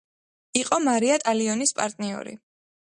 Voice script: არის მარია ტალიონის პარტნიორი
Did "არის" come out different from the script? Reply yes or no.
yes